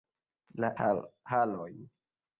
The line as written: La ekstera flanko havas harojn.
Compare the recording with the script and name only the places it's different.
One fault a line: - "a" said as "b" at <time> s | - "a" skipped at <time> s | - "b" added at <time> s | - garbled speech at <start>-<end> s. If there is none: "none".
- "ekstera flanko havas" skipped at 0.7 s